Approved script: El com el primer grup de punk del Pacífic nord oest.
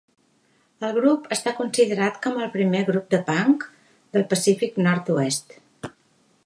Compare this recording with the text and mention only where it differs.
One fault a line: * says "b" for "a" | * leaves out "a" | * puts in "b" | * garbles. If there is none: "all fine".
* puts in "grup està considerat"